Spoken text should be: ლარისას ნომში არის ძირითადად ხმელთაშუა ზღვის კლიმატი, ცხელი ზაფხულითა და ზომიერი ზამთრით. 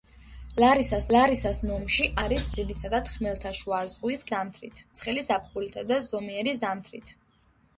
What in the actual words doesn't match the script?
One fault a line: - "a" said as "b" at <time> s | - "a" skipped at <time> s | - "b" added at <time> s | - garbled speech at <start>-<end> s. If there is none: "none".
- "ლარისას" added at 1.1 s
- "კლიმატი" said as "ზამთრით" at 4.3 s